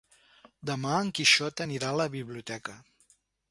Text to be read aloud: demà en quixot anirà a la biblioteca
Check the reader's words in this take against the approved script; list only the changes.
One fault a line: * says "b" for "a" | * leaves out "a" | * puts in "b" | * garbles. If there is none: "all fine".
all fine